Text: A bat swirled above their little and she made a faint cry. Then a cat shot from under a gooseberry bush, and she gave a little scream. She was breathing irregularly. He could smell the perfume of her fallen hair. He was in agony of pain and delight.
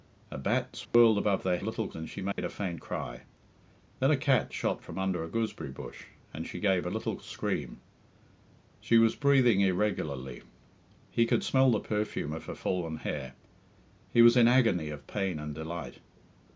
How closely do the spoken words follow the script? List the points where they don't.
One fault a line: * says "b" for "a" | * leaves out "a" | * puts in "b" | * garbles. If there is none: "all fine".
all fine